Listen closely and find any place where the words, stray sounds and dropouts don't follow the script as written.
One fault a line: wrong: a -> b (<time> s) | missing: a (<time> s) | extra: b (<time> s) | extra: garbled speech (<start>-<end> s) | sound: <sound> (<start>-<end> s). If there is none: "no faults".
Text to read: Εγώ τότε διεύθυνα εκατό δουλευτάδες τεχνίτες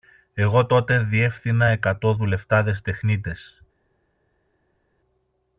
no faults